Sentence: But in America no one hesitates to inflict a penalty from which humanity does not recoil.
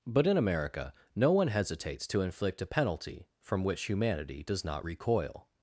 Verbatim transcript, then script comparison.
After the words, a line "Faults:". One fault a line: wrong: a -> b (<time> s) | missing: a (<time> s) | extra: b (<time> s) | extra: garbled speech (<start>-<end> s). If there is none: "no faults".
But in America no one hesitates to inflict a penalty from which humanity does not recoil.
Faults:
no faults